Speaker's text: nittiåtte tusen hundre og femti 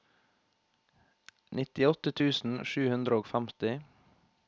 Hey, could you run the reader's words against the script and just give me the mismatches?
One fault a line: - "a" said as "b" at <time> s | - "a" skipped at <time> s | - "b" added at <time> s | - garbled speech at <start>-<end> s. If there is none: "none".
- "sju" added at 2.7 s